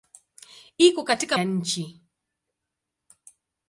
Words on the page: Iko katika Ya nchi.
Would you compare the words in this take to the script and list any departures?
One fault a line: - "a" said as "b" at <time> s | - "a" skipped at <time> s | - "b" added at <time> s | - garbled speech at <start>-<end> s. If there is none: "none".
none